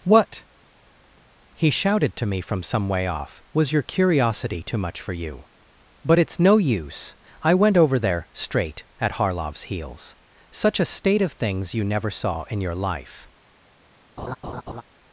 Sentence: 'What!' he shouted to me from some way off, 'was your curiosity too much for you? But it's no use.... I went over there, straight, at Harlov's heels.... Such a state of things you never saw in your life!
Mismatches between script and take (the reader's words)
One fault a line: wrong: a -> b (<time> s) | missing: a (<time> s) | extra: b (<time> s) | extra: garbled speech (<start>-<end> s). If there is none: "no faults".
no faults